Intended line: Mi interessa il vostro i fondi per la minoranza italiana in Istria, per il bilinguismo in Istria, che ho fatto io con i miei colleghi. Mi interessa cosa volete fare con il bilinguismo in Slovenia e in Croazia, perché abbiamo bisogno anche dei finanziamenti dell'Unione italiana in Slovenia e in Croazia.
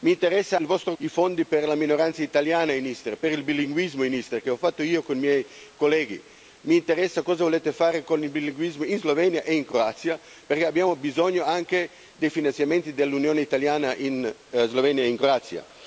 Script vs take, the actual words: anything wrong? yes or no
no